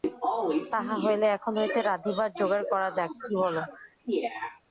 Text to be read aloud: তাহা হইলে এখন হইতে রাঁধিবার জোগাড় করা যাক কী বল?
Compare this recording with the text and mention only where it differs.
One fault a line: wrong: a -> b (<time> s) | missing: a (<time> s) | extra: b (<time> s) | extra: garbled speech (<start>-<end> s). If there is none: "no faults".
no faults